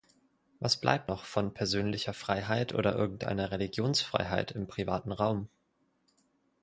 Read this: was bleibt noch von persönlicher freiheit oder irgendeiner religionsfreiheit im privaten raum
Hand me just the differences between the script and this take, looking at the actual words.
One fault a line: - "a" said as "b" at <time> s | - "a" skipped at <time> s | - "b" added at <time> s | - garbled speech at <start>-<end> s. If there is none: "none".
none